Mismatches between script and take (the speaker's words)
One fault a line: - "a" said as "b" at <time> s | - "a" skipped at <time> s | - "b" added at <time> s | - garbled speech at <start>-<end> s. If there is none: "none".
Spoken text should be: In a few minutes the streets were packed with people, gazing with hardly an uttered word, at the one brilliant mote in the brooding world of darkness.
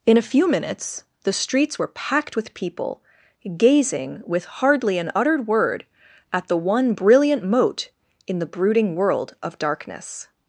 none